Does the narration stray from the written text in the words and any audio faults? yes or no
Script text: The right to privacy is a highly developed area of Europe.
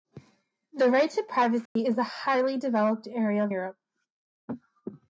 yes